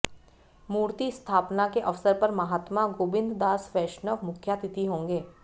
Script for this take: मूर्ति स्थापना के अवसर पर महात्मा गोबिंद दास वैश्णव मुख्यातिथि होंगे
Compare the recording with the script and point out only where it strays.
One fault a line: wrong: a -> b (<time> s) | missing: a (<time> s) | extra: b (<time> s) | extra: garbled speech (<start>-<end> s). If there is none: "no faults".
no faults